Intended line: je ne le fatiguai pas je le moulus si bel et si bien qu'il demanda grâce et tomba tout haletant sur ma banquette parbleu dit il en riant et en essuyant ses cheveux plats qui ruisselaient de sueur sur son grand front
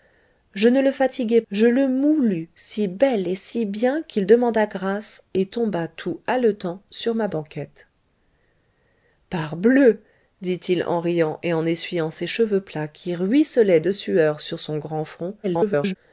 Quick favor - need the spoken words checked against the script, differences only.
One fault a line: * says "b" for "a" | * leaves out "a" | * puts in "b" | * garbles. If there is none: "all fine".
* leaves out "pas"
* garbles